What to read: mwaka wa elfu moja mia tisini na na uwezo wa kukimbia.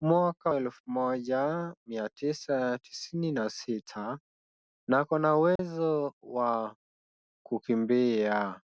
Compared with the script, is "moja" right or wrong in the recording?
right